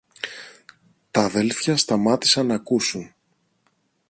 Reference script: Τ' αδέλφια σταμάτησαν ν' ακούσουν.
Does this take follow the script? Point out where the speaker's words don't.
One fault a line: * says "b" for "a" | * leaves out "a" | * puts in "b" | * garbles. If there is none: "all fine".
all fine